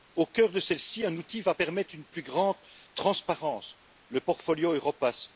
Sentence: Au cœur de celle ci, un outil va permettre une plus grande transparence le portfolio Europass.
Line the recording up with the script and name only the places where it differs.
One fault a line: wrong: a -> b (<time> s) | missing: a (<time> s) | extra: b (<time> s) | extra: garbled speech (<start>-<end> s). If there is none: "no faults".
no faults